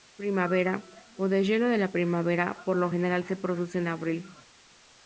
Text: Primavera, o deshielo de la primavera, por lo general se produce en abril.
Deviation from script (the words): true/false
false